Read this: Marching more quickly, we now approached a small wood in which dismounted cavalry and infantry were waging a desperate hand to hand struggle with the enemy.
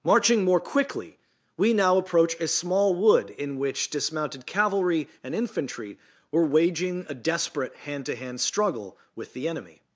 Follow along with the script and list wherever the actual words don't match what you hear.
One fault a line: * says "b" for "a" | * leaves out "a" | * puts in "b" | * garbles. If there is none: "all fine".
* says "approach" for "approached"